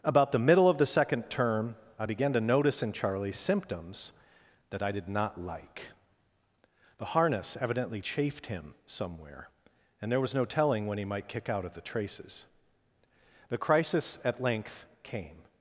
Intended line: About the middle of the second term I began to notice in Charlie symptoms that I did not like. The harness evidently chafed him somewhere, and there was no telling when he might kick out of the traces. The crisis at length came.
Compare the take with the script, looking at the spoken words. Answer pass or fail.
pass